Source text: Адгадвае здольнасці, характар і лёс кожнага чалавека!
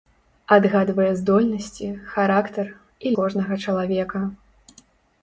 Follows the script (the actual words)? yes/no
no